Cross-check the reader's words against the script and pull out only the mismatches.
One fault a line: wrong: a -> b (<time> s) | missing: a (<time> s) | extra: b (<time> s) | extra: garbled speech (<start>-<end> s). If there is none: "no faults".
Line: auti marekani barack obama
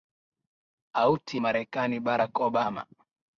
no faults